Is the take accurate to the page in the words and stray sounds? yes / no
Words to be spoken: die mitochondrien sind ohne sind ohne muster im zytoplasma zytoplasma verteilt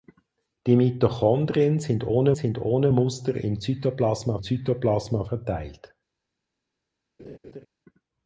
no